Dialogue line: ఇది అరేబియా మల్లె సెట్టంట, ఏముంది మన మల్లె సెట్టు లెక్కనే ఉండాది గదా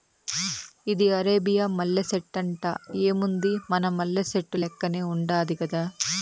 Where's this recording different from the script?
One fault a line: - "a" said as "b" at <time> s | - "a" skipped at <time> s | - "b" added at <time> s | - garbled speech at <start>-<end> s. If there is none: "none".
none